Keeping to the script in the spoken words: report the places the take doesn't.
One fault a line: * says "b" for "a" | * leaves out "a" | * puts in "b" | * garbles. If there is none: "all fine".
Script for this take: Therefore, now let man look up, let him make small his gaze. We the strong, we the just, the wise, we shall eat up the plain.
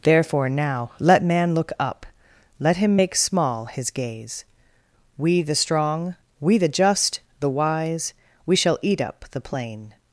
all fine